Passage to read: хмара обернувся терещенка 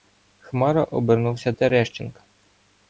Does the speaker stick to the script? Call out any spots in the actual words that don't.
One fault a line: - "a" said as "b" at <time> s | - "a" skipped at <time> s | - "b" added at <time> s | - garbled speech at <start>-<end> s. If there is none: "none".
none